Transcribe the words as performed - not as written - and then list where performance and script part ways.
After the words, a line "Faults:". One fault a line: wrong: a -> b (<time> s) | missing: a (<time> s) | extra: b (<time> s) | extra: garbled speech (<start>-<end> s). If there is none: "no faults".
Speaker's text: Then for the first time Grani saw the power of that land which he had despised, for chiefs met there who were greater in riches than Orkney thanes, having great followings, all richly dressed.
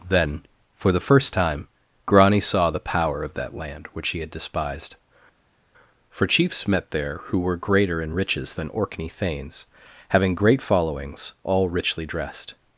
Then for the first time Grani saw the power of that land which he had despised, for chiefs met there who were greater in riches than Orkney thanes, having great followings, all richly dressed.
Faults:
no faults